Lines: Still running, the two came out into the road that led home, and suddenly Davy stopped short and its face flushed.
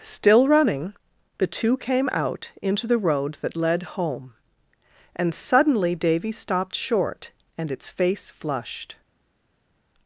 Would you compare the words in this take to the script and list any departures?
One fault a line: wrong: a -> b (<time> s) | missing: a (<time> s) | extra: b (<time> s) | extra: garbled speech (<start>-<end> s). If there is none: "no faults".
no faults